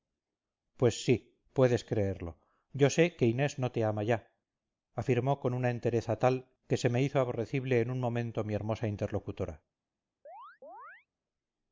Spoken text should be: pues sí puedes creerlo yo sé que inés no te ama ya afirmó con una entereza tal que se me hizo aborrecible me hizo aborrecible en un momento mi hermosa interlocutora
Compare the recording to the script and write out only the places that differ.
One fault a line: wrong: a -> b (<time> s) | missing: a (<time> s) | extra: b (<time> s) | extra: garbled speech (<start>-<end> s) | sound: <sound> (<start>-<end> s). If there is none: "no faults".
missing: me hizo aborrecible (7.8 s)
sound: chirp (10.2-11.1 s)